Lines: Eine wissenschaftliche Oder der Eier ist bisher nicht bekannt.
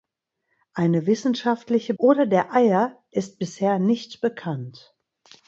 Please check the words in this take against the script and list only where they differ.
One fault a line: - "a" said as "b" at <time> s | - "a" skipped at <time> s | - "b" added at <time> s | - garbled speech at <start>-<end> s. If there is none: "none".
none